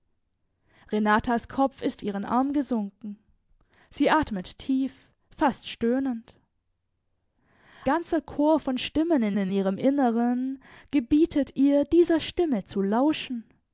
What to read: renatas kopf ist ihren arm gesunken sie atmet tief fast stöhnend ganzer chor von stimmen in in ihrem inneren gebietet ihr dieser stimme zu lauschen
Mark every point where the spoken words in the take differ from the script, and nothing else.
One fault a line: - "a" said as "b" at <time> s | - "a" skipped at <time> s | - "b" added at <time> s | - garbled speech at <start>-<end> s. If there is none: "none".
none